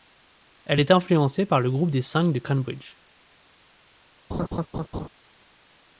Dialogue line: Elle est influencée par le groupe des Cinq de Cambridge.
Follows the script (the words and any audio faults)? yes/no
no